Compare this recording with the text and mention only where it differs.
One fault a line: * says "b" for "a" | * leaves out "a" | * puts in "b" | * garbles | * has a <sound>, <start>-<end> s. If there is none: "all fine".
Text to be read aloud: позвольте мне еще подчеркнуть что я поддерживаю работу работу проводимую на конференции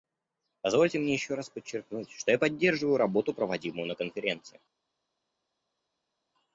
* puts in "раз"
* leaves out "работу"